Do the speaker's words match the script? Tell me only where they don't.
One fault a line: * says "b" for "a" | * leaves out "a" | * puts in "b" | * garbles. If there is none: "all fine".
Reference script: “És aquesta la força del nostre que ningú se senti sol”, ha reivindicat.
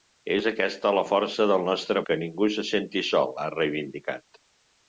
all fine